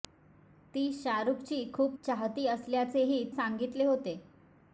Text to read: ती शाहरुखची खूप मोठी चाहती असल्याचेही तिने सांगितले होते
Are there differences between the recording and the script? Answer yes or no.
yes